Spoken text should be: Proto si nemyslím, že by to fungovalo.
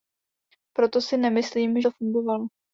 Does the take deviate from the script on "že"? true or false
true